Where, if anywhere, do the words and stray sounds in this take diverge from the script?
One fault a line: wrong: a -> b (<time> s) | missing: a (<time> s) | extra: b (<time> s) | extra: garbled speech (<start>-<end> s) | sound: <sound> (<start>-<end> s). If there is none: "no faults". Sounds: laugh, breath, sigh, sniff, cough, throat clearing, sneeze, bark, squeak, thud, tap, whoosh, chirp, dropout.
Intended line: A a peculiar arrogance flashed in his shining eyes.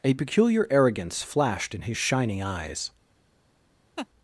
missing: a (0.1 s)
sound: laugh (4.0-4.1 s)